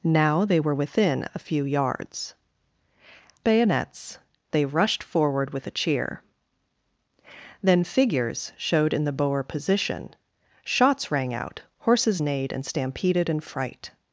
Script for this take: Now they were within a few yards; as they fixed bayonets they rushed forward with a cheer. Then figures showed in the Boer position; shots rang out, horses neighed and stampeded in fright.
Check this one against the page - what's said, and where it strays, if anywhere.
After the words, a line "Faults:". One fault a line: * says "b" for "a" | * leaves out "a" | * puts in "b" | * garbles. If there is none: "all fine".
Now they were within a few yards; bayonets they rushed forward with a cheer. Then figures showed in the Boer position; shots rang out, horses neighed and stampeded in fright.
Faults:
* leaves out "as they fixed"